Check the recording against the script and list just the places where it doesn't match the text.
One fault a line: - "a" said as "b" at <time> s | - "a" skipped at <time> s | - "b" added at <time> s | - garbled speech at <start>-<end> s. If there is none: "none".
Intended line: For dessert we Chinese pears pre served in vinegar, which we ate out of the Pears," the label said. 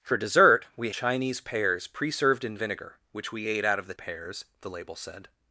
none